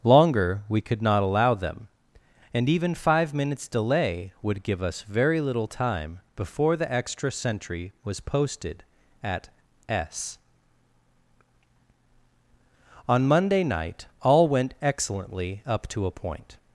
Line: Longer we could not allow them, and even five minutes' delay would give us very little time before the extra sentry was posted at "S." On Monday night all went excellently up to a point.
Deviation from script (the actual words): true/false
false